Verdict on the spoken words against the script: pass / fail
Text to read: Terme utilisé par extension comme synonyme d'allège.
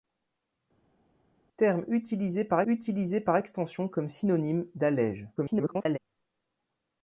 fail